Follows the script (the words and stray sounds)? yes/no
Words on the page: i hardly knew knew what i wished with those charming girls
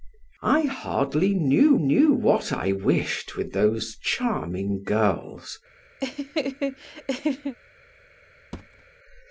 no